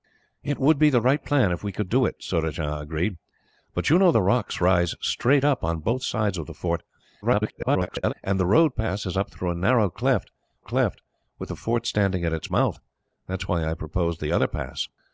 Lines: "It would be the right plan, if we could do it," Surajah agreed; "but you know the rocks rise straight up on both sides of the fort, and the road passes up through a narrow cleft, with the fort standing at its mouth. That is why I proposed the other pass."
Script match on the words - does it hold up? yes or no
no